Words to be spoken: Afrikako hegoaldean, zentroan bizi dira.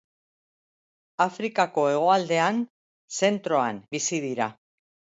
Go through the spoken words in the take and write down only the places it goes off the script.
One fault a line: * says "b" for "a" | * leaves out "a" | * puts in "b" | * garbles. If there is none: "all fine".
all fine